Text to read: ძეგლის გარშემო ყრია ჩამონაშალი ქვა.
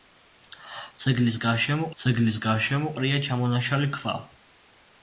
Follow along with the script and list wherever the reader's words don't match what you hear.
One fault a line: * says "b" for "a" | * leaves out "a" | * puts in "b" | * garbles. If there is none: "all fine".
* puts in "ძეგლის გარშემო"